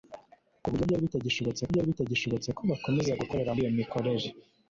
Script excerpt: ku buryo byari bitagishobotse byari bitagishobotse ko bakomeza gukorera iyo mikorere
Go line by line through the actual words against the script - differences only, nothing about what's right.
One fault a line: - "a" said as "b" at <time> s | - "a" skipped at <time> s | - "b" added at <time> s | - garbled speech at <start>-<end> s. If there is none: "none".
none